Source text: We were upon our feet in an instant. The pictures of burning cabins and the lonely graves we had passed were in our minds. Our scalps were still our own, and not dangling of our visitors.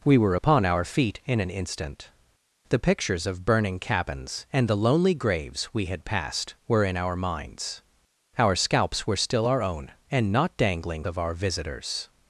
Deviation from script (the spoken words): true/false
false